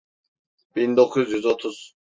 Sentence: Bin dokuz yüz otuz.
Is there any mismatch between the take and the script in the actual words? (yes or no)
no